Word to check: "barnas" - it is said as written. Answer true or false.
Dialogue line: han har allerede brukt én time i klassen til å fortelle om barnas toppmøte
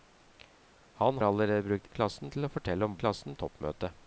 false